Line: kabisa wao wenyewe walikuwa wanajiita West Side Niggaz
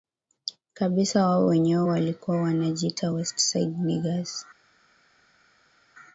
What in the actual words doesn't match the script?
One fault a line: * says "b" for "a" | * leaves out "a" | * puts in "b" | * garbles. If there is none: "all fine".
all fine